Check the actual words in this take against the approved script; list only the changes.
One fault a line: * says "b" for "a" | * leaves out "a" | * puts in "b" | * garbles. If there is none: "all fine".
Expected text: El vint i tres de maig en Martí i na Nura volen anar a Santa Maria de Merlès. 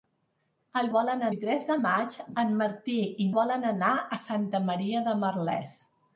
* says "volen" for "vint"
* leaves out "na Nura"